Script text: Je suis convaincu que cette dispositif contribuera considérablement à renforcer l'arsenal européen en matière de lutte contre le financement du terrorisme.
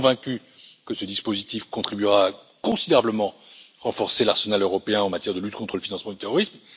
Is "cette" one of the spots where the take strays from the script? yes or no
yes